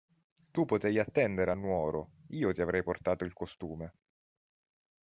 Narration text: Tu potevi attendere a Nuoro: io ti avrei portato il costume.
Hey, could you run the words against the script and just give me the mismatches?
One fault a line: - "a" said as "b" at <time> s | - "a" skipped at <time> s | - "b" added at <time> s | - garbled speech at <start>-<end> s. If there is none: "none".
none